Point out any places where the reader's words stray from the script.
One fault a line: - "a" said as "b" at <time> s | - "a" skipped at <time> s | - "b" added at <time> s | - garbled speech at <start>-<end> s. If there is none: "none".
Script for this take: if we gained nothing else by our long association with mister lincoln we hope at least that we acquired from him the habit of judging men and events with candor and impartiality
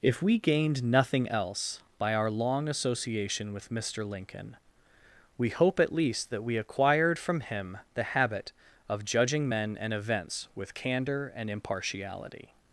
none